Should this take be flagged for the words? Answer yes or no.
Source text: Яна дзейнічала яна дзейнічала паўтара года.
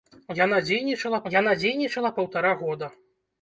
no